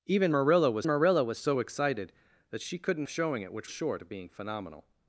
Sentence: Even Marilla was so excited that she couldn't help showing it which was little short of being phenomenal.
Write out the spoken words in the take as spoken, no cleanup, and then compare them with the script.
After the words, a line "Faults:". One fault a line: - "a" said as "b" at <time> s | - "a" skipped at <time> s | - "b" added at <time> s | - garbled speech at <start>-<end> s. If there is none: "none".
Even Marilla was Marilla was so excited that she couldn't showing it which short of being phenomenal.
Faults:
- "Marilla was" added at 0.9 s
- "help" skipped at 3.1 s
- "was little" skipped at 3.7 s